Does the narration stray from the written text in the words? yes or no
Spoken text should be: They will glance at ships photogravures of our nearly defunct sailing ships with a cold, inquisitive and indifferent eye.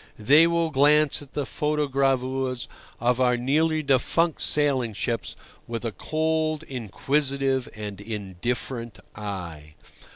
yes